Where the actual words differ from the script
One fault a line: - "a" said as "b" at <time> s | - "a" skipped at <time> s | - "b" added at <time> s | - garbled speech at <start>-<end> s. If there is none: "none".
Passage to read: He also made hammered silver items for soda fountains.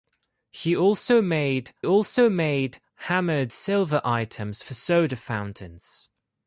- "also made" added at 1.8 s